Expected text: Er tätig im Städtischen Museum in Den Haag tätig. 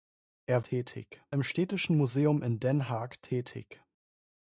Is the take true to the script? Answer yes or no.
yes